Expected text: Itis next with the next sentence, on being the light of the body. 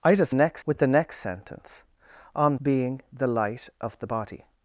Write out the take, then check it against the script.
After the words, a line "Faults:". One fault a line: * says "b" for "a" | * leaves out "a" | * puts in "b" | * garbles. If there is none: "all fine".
Itis next with the next sentence, on being the light of the body.
Faults:
all fine